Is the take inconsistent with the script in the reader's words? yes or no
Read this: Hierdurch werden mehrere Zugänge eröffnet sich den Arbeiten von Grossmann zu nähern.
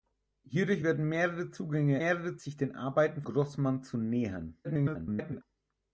yes